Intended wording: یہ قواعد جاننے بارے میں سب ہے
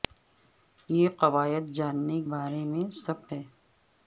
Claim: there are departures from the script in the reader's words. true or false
false